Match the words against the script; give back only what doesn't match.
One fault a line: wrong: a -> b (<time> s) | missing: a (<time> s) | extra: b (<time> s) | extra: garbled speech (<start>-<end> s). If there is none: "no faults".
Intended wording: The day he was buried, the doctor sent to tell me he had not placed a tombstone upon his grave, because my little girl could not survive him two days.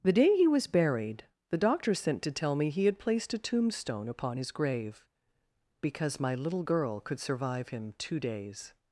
missing: not (3.0 s)
missing: not (7.2 s)